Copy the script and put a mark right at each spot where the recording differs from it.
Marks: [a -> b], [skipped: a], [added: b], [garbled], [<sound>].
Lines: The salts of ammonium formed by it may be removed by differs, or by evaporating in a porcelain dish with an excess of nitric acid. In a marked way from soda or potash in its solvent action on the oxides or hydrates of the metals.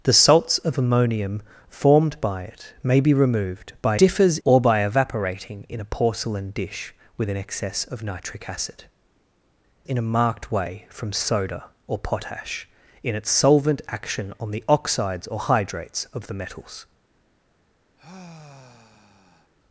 The salts of ammonium formed by it may be removed by differs, or by evaporating in a porcelain dish with an excess of nitric acid. In a marked way from soda or potash in its solvent action on the oxides or hydrates of the metals. [sigh]